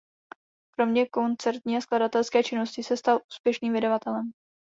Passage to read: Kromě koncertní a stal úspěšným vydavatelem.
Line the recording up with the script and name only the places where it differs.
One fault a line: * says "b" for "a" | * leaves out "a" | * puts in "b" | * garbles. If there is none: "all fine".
* puts in "skladatelské činnosti se"